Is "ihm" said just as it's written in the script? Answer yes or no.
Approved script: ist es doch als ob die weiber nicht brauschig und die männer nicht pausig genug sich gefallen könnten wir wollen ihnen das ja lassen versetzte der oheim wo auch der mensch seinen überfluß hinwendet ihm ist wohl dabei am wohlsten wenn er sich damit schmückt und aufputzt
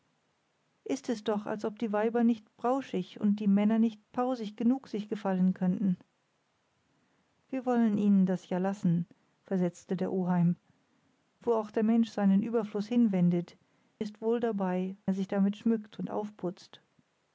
no